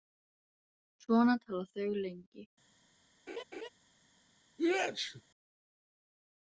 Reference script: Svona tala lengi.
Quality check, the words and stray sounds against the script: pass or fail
fail